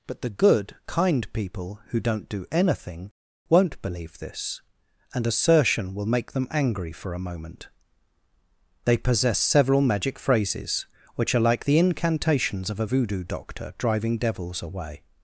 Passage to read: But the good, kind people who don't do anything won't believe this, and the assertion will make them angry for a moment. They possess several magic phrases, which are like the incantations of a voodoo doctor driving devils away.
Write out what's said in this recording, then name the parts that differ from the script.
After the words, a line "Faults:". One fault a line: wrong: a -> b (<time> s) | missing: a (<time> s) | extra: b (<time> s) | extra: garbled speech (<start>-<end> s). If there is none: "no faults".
But the good, kind people who don't do anything won't believe this, and assertion will make them angry for a moment. They possess several magic phrases, which are like the incantations of a voodoo doctor driving devils away.
Faults:
missing: the (5.3 s)